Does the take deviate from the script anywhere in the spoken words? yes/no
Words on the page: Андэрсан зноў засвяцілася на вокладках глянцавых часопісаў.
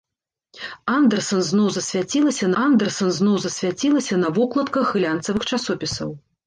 yes